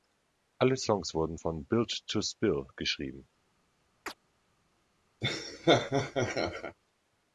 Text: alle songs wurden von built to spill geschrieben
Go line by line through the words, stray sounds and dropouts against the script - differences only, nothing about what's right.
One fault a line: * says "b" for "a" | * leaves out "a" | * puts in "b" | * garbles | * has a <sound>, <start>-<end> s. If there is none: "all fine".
* has a chirp, 4.1-4.1 s
* has a laugh, 5.2-6.8 s